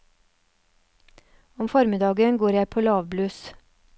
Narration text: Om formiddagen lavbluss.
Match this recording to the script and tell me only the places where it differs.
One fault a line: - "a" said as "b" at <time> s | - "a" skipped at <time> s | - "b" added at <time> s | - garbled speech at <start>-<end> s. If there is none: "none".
- "går jeg på" added at 2.4 s